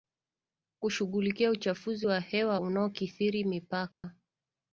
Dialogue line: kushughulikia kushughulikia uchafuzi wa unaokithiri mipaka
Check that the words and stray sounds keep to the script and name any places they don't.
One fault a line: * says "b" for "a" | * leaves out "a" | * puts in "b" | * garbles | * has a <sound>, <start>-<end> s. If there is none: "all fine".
* leaves out "kushughulikia"
* puts in "hewa"
* has a dropout, 3.9-4.0 s